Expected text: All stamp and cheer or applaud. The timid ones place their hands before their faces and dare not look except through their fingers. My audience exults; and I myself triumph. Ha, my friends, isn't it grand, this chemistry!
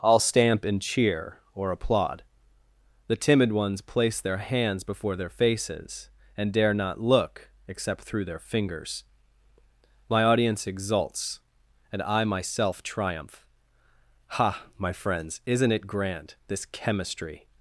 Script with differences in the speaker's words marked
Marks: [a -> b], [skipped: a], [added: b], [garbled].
All stamp and cheer or applaud. The timid ones place their hands before their faces and dare not look except through their fingers. My audience exults; and I myself triumph. Ha, my friends, isn't it grand, this chemistry!